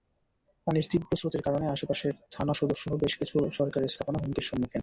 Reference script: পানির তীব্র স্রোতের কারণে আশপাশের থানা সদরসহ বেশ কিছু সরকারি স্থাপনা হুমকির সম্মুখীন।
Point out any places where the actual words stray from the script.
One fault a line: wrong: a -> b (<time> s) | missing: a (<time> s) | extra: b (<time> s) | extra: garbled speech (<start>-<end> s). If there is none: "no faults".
no faults